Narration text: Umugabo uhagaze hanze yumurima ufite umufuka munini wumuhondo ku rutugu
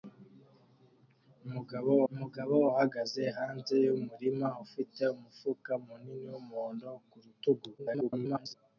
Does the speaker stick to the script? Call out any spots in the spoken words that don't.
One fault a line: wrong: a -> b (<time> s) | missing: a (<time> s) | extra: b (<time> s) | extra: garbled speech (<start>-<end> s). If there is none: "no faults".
extra: umugabo (2.1 s)
extra: garbled speech (7.8-8.5 s)